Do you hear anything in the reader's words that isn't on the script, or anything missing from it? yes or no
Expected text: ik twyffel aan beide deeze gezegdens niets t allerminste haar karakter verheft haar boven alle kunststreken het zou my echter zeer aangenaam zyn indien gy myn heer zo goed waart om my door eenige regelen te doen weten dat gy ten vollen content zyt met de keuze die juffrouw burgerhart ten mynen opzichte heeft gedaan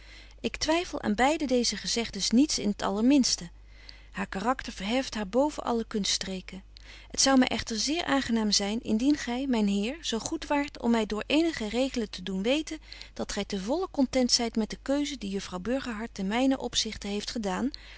yes